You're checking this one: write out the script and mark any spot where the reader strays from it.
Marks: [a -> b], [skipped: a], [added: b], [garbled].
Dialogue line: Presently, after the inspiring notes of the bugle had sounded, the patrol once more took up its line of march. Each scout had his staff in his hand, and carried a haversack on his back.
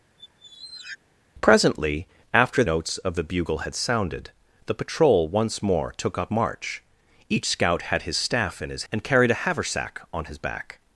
Presently, after [skipped: the inspiring] notes of the bugle had sounded, the patrol once more took up [skipped: its line of] march. Each scout had his staff in his [skipped: hand,] and carried a haversack on his back.